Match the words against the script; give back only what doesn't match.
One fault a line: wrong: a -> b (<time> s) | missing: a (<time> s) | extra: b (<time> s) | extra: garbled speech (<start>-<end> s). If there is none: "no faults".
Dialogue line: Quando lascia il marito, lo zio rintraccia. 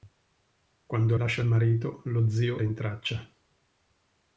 no faults